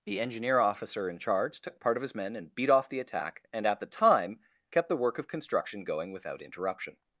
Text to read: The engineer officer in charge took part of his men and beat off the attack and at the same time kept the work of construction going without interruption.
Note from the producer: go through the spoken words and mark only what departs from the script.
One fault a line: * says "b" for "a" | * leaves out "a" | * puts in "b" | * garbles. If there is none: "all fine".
* leaves out "same"